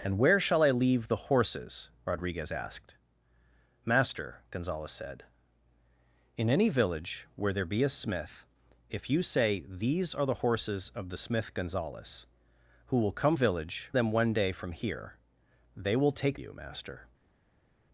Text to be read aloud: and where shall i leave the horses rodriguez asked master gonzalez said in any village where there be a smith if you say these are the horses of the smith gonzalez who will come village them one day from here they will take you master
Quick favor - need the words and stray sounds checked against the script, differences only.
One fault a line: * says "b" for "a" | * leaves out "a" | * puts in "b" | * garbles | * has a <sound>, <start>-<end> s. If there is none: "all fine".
all fine